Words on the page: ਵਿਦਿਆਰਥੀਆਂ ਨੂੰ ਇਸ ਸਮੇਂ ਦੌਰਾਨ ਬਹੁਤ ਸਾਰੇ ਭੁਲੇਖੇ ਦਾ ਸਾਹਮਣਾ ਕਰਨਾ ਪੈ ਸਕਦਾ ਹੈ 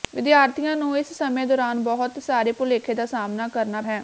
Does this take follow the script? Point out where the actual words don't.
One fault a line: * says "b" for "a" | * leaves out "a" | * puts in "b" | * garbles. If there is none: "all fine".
* leaves out "ਪੈ ਸਕਦਾ"